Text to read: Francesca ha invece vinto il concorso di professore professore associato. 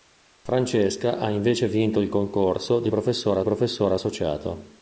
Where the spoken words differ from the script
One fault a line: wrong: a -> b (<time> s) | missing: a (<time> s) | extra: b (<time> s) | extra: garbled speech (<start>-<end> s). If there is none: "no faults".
no faults